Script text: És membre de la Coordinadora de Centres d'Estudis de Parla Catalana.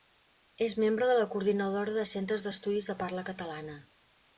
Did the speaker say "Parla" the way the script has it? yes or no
yes